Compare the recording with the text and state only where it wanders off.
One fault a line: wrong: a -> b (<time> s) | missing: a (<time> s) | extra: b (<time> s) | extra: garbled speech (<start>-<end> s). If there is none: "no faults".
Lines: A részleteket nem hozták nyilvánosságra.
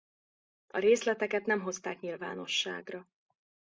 no faults